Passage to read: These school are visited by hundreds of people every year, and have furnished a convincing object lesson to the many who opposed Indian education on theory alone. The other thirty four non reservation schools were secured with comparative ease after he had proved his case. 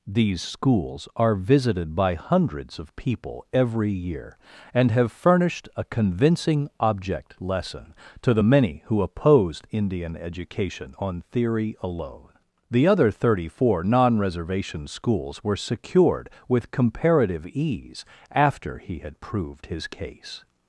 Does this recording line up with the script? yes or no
no